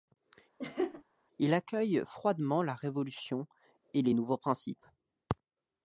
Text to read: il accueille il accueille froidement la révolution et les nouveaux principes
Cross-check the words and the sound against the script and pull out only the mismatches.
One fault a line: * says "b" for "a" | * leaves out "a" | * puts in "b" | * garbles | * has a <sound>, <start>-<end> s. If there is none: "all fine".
* has a laugh, 0.6-1.0 s
* leaves out "il accueille"